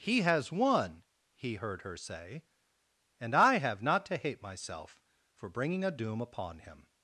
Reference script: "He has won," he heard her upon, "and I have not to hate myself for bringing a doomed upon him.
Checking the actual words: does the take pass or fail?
fail